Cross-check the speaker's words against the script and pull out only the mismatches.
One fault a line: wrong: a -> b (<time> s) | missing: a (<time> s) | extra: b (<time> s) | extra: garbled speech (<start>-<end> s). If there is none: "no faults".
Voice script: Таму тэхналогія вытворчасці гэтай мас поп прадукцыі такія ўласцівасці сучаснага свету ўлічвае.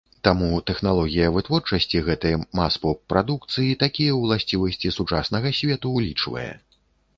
no faults